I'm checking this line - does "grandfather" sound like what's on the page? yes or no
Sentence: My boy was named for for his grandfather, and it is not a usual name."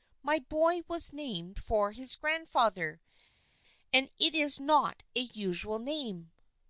yes